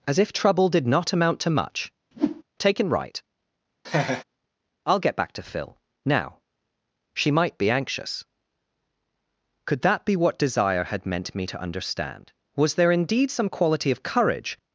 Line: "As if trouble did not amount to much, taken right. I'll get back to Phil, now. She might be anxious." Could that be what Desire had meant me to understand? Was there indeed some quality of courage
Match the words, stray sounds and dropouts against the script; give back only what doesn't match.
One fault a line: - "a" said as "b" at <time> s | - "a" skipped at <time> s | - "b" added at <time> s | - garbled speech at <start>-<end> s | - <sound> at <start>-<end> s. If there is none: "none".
- whoosh at 2.1-2.4 s
- laugh at 3.8-4.2 s